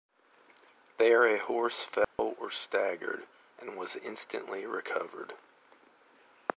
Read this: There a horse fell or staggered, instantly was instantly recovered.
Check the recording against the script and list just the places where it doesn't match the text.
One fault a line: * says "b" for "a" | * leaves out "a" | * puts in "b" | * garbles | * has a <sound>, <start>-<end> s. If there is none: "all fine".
* has a dropout, 2.0-2.2 s
* says "and" for "instantly"